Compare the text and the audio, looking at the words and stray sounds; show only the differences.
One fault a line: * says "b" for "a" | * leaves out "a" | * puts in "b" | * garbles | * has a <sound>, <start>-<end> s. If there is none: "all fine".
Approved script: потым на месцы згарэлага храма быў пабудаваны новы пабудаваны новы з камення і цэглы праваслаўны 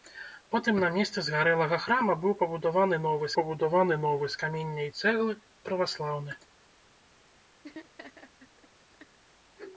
* has a laugh, 7.6-9.2 s